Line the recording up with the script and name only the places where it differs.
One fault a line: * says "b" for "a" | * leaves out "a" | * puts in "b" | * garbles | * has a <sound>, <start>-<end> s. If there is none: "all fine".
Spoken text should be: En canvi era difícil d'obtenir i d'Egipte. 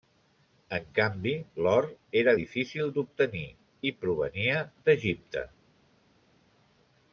* puts in "l'or"
* puts in "provenia"